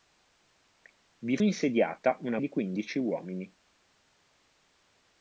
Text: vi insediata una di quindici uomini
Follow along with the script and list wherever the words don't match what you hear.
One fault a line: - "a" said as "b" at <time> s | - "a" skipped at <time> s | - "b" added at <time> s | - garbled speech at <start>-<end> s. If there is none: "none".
none